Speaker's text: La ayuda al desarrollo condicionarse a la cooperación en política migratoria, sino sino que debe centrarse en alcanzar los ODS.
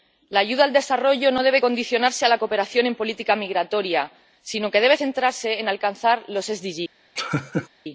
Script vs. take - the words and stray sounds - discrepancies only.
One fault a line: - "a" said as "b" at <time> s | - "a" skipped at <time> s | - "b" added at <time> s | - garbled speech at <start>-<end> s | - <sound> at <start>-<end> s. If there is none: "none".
- "no debe" added at 1.3 s
- "sino" skipped at 4.7 s
- laugh at 7.2-7.7 s